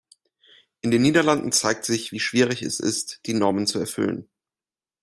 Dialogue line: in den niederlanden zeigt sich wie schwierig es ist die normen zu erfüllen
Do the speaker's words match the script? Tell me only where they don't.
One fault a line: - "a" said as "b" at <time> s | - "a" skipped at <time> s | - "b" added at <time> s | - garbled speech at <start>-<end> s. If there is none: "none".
none